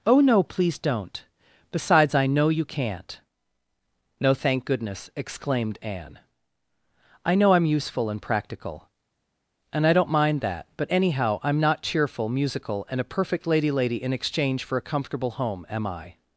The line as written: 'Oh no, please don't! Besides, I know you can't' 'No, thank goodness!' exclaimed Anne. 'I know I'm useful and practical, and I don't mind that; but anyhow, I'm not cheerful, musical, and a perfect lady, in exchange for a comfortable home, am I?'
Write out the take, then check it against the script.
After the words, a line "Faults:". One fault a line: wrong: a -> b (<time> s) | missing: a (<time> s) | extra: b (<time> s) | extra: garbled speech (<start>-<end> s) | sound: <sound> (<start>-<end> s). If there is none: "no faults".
'Oh no, please don't! Besides, I know you can't' 'No, thank goodness!' exclaimed Anne. 'I know I'm useful and practical, and I don't mind that; but anyhow, I'm not cheerful, musical, and a perfect lady lady, in exchange for a comfortable home, am I?'
Faults:
extra: lady (13.7 s)